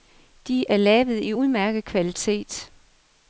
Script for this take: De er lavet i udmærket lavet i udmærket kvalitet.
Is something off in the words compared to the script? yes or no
yes